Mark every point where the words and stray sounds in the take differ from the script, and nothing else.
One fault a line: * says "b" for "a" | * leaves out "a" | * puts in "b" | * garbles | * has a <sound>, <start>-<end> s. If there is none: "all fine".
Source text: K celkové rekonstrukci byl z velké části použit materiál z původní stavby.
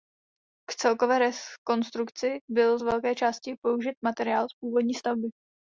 all fine